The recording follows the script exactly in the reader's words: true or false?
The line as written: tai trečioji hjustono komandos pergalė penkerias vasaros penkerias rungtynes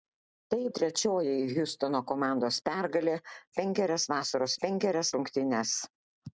true